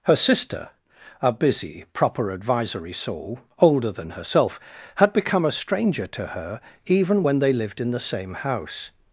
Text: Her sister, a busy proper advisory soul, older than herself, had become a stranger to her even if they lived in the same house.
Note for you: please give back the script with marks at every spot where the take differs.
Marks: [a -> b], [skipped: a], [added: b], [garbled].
Her sister, a busy proper advisory soul, older than herself, had become a stranger to her even [if -> when] they lived in the same house.